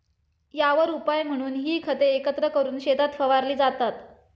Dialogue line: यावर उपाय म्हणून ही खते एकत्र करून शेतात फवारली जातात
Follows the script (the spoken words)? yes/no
yes